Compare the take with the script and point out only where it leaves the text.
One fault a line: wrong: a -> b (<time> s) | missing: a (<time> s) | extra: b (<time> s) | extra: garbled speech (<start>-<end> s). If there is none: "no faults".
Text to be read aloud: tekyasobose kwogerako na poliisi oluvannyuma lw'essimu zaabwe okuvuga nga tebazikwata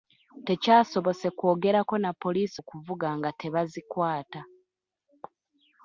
missing: oluvannyuma lw'essimu zaabwe (2.6 s)